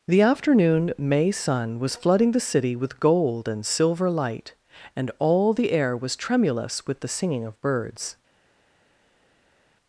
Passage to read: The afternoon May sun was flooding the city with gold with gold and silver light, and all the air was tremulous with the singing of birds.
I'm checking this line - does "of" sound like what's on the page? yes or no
yes